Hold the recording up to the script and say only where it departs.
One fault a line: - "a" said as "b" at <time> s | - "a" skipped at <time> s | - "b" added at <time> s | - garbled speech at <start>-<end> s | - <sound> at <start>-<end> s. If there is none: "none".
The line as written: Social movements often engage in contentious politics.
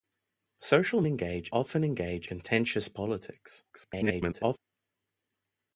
- "movements" said as "engage" at 1.1 s
- "in" skipped at 2.3 s
- garbled speech at 3.7-4.6 s